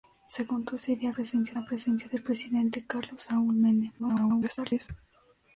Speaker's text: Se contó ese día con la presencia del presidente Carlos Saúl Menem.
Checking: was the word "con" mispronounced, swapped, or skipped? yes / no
yes